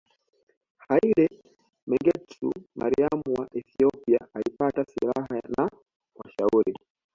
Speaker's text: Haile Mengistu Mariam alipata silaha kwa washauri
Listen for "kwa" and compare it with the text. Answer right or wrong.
wrong